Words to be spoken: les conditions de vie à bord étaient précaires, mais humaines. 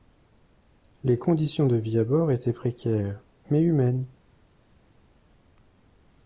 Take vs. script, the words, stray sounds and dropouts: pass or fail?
pass